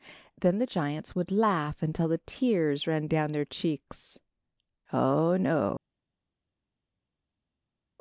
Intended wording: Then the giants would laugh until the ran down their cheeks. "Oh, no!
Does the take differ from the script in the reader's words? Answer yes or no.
yes